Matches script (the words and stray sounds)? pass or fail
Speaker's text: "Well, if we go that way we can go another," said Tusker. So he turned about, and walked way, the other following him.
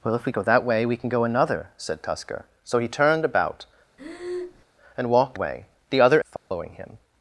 fail